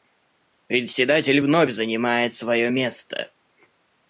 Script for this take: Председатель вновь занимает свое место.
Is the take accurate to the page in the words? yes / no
yes